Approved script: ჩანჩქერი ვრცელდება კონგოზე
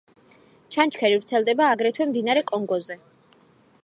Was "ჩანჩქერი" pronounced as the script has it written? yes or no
yes